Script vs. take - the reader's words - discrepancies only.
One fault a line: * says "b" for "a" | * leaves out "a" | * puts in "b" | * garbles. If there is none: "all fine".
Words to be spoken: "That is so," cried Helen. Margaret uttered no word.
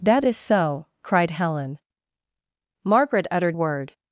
* leaves out "no"